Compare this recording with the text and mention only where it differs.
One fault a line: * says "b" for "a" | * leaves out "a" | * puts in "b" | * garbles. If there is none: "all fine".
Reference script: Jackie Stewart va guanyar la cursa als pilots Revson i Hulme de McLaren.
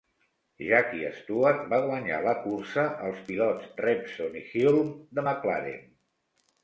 all fine